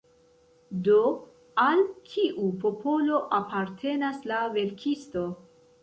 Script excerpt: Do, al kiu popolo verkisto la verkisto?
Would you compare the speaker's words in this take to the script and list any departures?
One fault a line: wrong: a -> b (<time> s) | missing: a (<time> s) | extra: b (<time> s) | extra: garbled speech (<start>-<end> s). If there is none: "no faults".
wrong: verkisto -> apartenas (3.4 s)